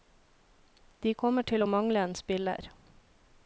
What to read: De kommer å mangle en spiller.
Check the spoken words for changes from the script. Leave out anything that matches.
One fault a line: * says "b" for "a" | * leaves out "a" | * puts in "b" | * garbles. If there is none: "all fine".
* puts in "til"